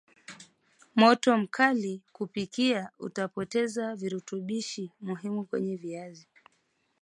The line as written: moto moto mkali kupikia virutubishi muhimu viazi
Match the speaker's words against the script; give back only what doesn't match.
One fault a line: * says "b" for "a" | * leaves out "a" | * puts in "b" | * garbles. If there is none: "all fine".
* leaves out "moto"
* puts in "utapoteza"
* puts in "kwenye"